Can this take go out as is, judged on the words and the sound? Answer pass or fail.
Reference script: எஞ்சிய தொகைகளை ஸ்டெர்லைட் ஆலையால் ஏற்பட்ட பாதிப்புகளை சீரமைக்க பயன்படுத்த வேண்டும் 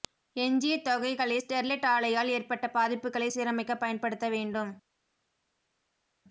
pass